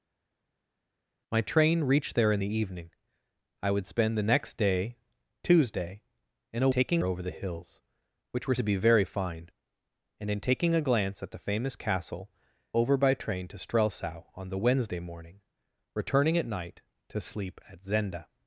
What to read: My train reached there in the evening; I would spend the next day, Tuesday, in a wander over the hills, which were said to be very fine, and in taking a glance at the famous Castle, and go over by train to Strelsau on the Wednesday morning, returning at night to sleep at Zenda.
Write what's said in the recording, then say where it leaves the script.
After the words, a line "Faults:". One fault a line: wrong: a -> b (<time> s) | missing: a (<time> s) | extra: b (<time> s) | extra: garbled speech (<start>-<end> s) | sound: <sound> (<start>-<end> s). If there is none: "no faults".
My train reached there in the evening; I would spend the next day, Tuesday, in a taking over the hills, which were to be very fine, and in taking a glance at the famous Castle, over by train to Strelsau on the Wednesday morning, returning at night to sleep at Zenda.
Faults:
wrong: wander -> taking (6.7 s)
missing: said (8.5 s)
missing: and go (12.3 s)